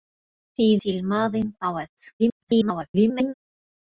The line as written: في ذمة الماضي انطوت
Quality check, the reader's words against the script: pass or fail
fail